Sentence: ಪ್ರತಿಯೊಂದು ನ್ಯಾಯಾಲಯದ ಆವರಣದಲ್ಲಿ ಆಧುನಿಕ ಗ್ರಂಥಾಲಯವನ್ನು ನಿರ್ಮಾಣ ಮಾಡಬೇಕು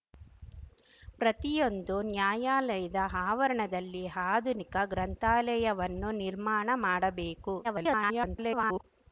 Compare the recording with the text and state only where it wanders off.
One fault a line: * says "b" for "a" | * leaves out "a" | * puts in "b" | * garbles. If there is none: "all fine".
* garbles